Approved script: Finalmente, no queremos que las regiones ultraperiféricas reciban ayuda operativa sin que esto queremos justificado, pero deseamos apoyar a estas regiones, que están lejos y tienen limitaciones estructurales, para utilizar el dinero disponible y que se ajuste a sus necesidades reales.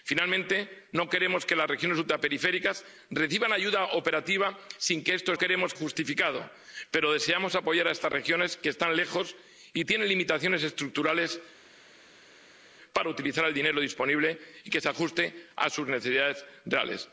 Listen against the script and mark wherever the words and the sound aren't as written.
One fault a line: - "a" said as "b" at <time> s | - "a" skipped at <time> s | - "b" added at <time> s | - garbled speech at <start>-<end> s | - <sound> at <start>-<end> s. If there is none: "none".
none